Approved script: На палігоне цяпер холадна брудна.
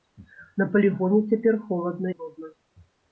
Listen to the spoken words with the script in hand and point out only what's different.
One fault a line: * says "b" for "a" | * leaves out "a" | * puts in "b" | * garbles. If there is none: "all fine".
all fine